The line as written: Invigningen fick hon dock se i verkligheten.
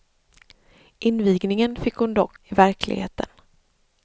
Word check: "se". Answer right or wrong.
wrong